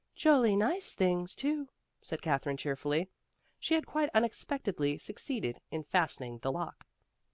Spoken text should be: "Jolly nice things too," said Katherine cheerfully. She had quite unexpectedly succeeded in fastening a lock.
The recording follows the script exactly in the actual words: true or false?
false